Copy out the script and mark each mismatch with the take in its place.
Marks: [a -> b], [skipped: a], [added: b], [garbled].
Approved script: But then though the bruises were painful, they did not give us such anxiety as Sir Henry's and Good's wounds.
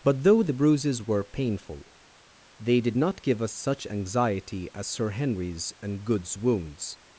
But [skipped: then] though the bruises were painful, they did not give us such anxiety as Sir Henry's and Good's wounds.